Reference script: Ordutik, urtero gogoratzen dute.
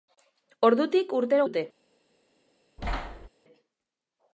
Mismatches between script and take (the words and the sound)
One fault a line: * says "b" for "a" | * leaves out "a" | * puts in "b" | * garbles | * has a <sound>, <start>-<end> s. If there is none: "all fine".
* leaves out "gogoratzen"
* has a thud, 2.8-3.3 s